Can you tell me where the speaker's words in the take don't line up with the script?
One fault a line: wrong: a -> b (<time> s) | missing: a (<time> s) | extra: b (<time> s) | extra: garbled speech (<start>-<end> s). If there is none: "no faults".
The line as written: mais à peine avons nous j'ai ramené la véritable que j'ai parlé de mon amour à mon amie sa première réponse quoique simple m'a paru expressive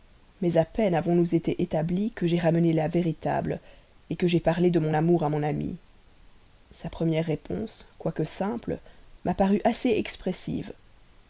extra: été établis que (1.4 s)
extra: assez (9.6 s)